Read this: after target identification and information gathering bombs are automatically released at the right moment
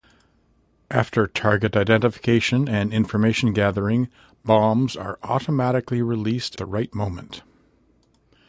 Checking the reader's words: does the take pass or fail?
fail